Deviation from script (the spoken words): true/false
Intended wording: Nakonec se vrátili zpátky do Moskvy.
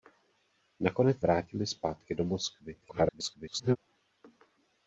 true